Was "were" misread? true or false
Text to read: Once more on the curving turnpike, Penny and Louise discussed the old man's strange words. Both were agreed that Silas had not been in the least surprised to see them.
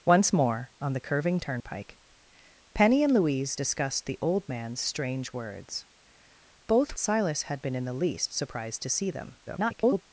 true